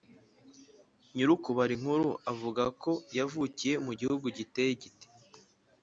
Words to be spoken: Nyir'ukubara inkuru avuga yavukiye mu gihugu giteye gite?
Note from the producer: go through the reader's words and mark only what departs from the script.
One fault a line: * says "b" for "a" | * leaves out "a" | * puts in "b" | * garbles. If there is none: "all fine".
* puts in "ko"